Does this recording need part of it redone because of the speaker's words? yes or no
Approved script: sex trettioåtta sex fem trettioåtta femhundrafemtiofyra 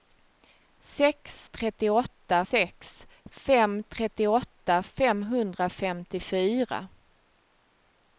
no